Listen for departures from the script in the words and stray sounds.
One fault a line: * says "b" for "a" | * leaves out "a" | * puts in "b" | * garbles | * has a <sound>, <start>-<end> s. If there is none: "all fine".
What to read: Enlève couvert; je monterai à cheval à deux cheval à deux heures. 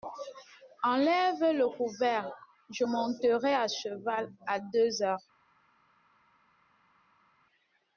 * puts in "le"
* leaves out "cheval à deux"